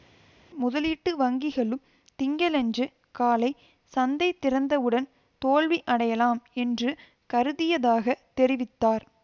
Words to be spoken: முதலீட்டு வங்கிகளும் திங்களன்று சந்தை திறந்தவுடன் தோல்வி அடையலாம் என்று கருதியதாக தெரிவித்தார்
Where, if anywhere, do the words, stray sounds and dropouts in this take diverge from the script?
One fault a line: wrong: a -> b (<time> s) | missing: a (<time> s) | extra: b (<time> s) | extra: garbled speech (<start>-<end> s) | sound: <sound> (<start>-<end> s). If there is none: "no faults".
extra: காலை (3.1 s)